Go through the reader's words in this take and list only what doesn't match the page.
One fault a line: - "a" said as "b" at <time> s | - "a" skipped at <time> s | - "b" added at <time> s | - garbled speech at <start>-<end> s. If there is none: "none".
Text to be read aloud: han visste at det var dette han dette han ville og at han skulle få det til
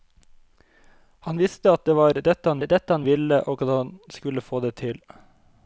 none